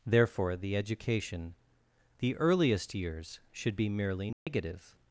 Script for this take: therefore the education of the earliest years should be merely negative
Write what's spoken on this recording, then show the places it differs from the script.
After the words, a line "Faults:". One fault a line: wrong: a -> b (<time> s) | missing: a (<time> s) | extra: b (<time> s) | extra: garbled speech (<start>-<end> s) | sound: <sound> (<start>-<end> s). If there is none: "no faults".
therefore the education the earliest years should be merely negative
Faults:
missing: of (1.5 s)
sound: dropout (4.3-4.5 s)